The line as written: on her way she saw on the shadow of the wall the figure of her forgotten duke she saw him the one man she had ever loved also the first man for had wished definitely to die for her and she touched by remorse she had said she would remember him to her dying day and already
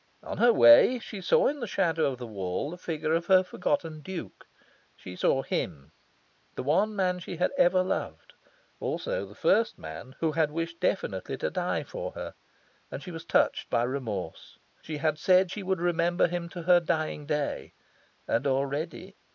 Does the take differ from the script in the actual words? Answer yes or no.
yes